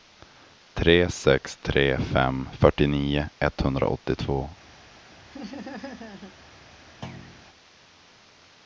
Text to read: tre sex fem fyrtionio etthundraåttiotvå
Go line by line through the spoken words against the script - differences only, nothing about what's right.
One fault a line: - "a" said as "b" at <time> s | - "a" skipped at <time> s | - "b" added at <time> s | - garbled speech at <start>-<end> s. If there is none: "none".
- "tre" added at 1.6 s